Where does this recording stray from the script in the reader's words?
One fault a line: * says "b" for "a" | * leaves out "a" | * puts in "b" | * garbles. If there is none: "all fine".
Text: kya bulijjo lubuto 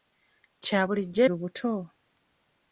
all fine